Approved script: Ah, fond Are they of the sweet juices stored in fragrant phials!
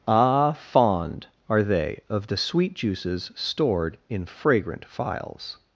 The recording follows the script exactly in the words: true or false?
true